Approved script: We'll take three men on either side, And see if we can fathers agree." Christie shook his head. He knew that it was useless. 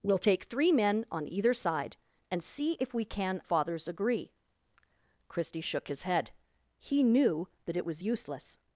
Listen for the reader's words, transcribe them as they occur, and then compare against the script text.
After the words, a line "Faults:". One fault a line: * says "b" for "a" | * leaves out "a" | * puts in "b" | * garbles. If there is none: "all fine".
We'll take three men on either side, And see if we can fathers agree." Christie shook his head. He knew that it was useless.
Faults:
all fine